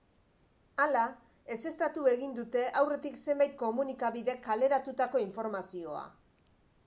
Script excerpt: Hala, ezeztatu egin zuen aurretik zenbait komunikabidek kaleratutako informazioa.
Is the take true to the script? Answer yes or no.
no